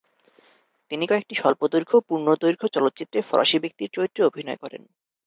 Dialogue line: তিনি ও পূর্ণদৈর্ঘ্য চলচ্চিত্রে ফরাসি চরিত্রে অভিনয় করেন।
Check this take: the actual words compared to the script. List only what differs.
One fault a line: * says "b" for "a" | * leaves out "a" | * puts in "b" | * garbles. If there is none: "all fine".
* puts in "কয়েকটি স্বল্পদৈর্ঘ্য"
* puts in "ব্যক্তির"